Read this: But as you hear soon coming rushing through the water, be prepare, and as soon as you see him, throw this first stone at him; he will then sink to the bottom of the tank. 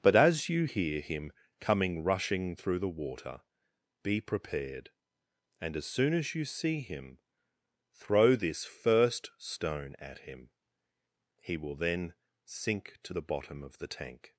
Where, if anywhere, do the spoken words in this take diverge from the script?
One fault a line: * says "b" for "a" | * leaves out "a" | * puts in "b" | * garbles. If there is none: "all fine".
* says "him" for "soon"
* says "prepared" for "prepare"